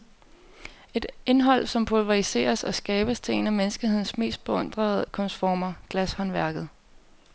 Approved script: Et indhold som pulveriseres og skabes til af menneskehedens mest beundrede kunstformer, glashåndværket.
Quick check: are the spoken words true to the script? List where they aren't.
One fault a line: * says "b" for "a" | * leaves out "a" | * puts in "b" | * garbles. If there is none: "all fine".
* puts in "en"